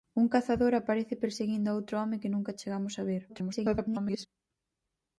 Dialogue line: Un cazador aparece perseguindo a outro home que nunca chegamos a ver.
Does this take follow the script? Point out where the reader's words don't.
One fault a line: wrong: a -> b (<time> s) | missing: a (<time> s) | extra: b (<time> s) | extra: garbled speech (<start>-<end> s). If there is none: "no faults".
extra: garbled speech (3.3-4.3 s)